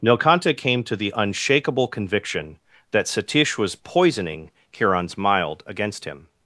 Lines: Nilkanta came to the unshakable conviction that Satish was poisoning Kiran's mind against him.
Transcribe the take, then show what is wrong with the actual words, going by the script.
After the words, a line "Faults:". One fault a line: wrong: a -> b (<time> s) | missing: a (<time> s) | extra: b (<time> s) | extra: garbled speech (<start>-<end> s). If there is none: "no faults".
Nilkanta came to the unshakable conviction that Satish was poisoning Kiran's mild against him.
Faults:
wrong: mind -> mild (5.2 s)